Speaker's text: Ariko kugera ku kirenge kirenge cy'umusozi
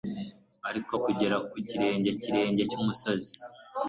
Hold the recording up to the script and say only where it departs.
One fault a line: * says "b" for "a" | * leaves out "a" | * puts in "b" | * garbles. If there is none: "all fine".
all fine